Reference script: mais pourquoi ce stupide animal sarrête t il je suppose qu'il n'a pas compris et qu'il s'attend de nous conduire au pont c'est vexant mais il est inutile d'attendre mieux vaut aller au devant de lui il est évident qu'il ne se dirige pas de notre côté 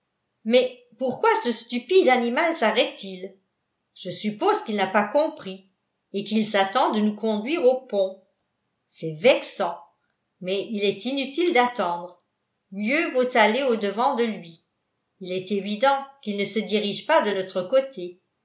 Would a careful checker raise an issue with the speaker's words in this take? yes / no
no